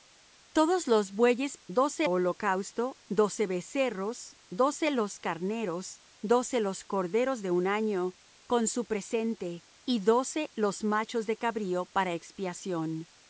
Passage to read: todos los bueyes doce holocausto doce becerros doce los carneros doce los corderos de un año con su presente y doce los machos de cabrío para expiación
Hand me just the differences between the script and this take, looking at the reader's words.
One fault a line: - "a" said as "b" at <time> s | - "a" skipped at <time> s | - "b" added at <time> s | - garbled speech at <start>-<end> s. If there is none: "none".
none